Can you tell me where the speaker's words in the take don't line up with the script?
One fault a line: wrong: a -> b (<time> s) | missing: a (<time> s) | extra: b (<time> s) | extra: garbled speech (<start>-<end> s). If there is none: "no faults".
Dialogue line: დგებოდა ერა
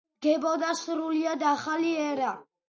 extra: სრულიად ახალი (0.8 s)